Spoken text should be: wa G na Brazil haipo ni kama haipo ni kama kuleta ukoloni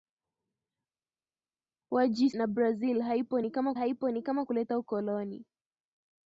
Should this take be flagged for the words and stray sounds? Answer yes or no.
no